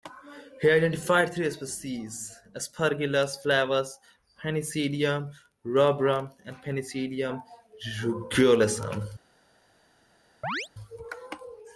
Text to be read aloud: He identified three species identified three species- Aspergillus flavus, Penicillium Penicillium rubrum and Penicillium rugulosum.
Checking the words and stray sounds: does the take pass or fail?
fail